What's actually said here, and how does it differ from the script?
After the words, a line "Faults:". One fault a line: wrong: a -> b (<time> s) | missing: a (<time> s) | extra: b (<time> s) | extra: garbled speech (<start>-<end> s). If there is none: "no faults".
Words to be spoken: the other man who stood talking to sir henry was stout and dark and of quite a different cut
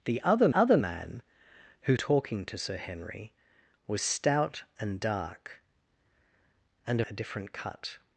the other other man who talking to sir henry was stout and dark and a different cut
Faults:
extra: other (0.5 s)
missing: stood (2.0 s)
missing: of quite (7.0 s)